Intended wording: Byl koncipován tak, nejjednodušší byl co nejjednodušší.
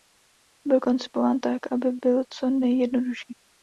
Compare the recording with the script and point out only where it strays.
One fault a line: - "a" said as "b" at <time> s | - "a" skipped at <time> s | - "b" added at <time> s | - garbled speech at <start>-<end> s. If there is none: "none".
- "nejjednodušší" said as "aby" at 1.7 s